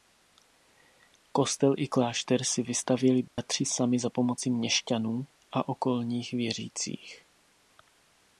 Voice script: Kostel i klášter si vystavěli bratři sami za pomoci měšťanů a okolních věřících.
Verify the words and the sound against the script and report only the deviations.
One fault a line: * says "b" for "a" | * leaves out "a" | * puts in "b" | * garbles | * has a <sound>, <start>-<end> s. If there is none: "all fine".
* has a dropout, 3.3-3.4 s